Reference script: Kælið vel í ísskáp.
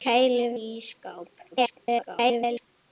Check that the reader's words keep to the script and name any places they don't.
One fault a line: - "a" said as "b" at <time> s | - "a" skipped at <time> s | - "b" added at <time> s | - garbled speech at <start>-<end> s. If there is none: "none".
- "vel" skipped at 0.6 s
- garbled speech at 1.5-2.7 s